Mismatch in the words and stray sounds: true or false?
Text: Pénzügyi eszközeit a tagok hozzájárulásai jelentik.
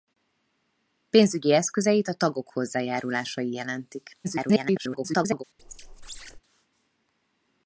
true